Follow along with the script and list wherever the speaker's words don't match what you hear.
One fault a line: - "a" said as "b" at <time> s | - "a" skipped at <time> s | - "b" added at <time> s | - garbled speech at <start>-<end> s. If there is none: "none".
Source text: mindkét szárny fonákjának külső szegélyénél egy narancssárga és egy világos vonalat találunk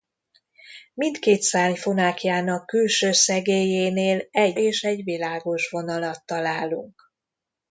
- "narancssárga" skipped at 4.6 s